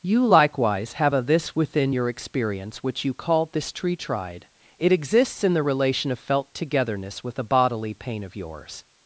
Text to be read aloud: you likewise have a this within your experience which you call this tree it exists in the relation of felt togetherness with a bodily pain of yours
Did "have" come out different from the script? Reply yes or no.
no